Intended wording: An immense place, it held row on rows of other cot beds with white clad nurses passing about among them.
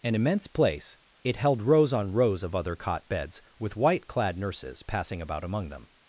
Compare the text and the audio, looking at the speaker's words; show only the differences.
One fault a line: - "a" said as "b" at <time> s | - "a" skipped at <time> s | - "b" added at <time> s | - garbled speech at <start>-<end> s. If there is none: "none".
- "row" said as "rows" at 1.6 s